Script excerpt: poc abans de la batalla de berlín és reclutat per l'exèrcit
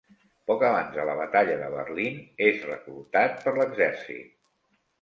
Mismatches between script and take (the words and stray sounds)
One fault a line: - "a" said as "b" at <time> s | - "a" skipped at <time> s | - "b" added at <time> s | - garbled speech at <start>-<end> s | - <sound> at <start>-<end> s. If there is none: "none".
none